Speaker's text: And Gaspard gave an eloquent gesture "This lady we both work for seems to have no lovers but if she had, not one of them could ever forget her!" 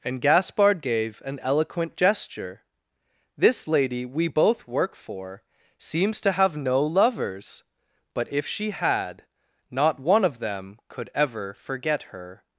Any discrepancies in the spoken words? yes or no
no